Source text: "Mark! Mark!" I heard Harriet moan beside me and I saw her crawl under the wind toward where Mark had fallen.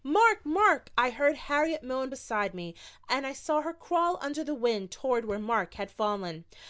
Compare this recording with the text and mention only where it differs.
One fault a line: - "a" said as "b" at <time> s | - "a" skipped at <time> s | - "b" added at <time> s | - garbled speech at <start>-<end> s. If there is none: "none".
none